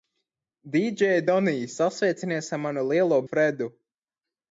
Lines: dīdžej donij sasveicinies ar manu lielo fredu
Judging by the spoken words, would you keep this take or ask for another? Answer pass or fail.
pass